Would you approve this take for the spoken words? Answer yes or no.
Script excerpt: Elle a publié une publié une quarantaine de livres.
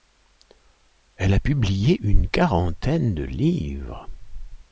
no